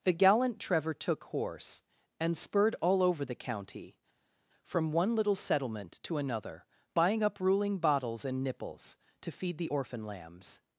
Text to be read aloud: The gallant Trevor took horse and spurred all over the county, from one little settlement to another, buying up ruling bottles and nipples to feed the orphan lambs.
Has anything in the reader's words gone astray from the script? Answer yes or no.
no